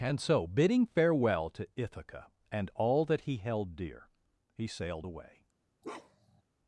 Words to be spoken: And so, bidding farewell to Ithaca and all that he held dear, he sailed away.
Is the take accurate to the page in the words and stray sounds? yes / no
no